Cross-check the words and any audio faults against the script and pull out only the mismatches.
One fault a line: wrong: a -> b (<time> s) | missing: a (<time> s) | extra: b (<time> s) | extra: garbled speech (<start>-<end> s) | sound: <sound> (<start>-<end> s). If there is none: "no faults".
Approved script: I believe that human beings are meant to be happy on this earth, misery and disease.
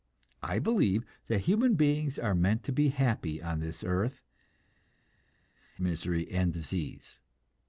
no faults